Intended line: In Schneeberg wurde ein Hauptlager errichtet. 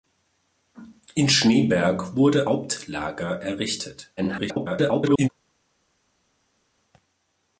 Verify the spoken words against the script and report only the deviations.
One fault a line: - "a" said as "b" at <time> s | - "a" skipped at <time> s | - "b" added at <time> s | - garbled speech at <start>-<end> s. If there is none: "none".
- "ein" skipped at 2.5 s
- garbled speech at 4.2-5.3 s